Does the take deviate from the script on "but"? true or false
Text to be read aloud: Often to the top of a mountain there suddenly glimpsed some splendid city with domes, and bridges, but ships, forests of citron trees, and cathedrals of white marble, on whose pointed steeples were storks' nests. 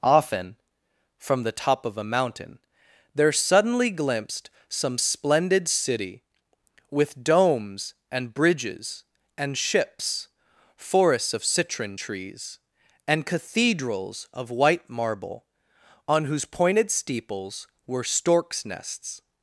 true